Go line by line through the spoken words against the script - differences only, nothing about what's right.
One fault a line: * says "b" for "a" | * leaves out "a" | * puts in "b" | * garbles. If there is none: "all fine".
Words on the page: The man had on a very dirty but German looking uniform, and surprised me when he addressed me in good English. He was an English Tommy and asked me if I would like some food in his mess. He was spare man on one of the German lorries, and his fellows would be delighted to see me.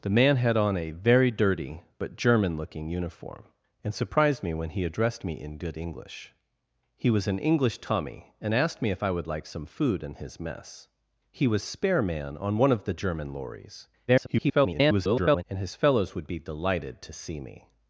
* garbles